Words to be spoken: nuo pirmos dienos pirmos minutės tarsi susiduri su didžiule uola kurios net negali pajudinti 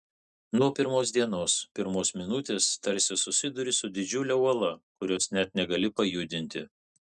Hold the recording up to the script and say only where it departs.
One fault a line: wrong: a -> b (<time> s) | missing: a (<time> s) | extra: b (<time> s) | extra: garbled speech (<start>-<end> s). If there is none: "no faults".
no faults